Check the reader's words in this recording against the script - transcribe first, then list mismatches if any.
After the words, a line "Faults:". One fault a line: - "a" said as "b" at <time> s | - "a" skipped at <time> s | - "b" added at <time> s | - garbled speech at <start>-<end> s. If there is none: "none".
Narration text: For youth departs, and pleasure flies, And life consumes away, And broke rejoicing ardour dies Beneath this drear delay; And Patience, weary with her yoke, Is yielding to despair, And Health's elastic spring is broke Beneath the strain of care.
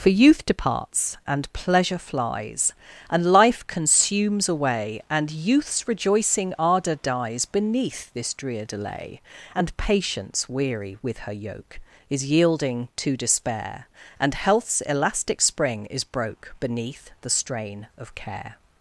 For youth departs, and pleasure flies, And life consumes away, And youth's rejoicing ardour dies Beneath this drear delay; And Patience, weary with her yoke, Is yielding to despair, And Health's elastic spring is broke Beneath the strain of care.
Faults:
- "broke" said as "youth's" at 5.3 s